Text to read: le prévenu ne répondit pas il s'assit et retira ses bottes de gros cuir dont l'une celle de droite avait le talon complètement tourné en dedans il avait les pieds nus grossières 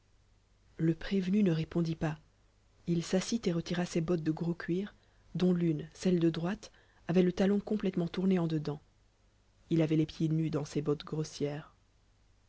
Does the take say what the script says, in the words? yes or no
no